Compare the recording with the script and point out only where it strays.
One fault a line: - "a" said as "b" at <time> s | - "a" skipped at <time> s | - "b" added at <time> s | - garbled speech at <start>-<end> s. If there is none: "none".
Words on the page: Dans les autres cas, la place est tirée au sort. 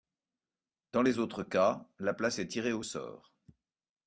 none